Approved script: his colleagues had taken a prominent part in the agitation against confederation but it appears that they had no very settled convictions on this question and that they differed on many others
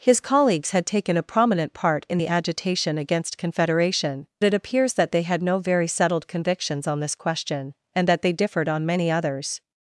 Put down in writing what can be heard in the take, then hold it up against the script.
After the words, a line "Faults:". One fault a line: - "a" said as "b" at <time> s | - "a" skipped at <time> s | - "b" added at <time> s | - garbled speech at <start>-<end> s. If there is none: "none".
his colleagues had taken a prominent part in the agitation against confederation it appears that they had no very settled convictions on this question and that they differed on many others
Faults:
- "but" skipped at 4.3 s